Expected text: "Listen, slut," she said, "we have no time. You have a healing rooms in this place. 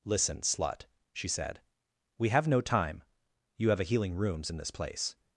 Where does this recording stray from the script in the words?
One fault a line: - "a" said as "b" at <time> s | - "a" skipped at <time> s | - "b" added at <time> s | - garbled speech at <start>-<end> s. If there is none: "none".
none